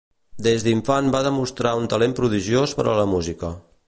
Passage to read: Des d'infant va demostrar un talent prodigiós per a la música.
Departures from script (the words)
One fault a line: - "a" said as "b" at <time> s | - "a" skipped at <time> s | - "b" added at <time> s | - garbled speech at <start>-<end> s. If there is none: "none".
none